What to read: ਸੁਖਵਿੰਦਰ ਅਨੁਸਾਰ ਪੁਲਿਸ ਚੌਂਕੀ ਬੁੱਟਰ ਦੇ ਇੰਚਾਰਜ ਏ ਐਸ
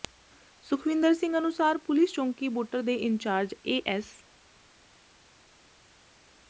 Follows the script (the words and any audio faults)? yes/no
no